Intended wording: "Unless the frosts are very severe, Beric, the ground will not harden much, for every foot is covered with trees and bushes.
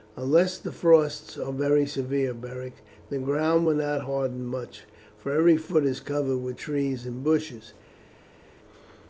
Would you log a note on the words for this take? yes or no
no